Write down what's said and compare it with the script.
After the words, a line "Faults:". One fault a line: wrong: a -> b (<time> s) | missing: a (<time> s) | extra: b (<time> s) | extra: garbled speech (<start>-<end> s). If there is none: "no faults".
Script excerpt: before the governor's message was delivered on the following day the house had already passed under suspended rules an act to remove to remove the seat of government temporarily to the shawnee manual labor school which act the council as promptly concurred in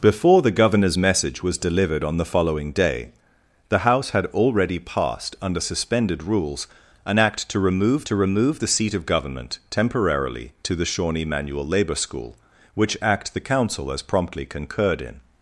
before the governor's message was delivered on the following day the house had already passed under suspended rules an act to remove to remove the seat of government temporarily to the shawnee manual labor school which act the council as promptly concurred in
Faults:
no faults